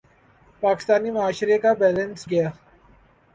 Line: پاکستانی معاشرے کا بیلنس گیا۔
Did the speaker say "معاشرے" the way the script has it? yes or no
yes